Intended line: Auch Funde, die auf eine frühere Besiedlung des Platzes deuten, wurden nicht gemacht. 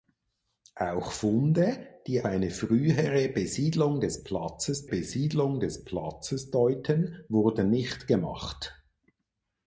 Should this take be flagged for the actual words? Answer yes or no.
yes